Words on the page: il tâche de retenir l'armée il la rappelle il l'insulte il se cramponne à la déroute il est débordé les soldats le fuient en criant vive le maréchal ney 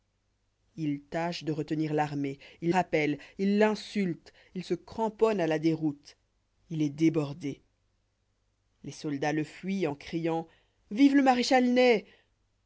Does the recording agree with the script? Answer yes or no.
no